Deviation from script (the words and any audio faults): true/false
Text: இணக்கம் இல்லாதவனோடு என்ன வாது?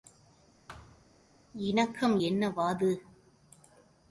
true